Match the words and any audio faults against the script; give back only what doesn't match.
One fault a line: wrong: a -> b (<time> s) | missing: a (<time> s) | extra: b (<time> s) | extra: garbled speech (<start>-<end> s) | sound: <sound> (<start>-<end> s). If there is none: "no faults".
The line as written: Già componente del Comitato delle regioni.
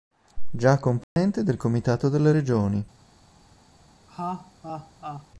sound: dropout (1.0-1.2 s)
sound: laugh (4.1-5.3 s)